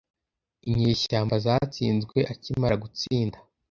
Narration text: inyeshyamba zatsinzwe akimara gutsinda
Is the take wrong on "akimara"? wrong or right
right